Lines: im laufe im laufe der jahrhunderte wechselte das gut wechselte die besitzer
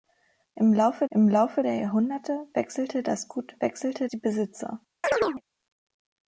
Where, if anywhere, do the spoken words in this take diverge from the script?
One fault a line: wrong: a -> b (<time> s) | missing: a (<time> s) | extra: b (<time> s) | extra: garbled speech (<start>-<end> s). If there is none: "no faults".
no faults